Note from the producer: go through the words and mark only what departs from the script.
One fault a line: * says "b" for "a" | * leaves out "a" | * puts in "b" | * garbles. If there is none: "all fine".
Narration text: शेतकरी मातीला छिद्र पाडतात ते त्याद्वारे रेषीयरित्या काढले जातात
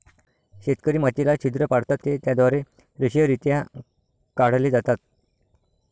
all fine